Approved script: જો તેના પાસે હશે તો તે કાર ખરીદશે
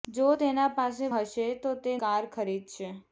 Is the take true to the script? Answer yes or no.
yes